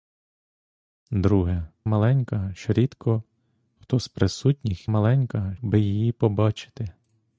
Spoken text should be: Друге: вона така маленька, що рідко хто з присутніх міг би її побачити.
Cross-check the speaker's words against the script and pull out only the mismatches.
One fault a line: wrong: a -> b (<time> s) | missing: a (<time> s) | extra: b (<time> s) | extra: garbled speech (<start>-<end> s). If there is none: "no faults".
missing: вона така (1.7 s)
wrong: міг -> маленька (4.9 s)